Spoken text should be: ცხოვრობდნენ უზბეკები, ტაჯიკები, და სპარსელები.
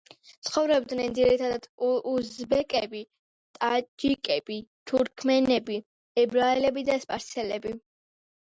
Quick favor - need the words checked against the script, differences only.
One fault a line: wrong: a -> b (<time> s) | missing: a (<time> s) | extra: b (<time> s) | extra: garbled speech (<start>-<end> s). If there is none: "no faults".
extra: ძირითადად (1.2 s)
extra: თურქმენები ებრაელები (4.9 s)